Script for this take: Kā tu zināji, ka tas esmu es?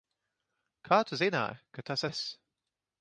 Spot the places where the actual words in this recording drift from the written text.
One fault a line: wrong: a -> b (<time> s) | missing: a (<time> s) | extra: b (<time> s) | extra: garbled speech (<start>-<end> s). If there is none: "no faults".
missing: esmu (2.0 s)